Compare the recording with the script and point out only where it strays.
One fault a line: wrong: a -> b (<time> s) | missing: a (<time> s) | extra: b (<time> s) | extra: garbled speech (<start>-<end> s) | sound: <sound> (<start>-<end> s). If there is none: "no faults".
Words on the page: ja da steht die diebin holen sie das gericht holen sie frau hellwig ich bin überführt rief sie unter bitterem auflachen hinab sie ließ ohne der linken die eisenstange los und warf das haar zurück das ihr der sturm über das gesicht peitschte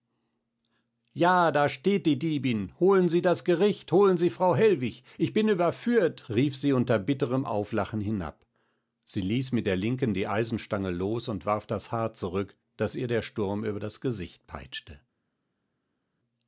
wrong: ohne -> mit (9.5 s)